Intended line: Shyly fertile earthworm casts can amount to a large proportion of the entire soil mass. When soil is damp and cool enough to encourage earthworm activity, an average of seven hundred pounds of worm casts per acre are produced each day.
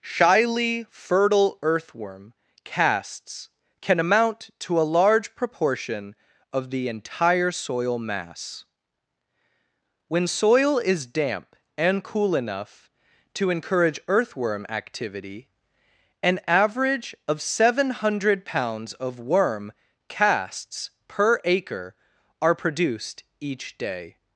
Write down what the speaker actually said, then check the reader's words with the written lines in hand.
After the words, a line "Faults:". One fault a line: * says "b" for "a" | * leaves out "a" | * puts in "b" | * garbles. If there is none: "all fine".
Shyly fertile earthworm casts can amount to a large proportion of the entire soil mass. When soil is damp and cool enough to encourage earthworm activity, an average of seven hundred pounds of worm casts per acre are produced each day.
Faults:
all fine